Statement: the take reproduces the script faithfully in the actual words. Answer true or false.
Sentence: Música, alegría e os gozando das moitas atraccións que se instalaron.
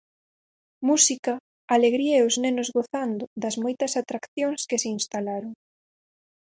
false